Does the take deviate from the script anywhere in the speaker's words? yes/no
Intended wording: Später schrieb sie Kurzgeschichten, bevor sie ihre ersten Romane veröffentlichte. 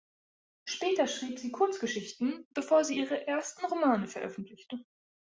no